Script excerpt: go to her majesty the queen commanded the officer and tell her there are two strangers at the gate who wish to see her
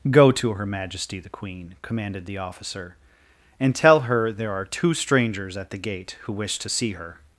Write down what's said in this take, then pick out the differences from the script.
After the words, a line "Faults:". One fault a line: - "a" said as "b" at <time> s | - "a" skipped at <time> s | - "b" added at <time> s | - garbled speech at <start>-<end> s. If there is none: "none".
go to her majesty the queen commanded the officer and tell her there are two strangers at the gate who wish to see her
Faults:
none